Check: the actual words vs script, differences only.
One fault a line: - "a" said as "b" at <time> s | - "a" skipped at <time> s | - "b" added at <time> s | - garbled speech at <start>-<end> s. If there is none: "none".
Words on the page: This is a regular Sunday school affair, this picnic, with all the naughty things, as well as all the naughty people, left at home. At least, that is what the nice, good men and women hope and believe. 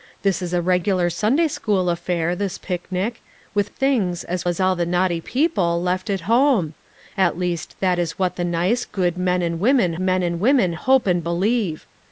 - "all the naughty" skipped at 3.7 s
- "well" skipped at 4.5 s
- "men and women" added at 10.0 s